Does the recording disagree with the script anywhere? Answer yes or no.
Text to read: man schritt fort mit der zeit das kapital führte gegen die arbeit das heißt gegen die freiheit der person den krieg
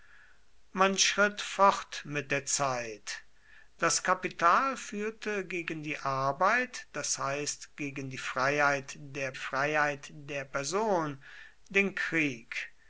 yes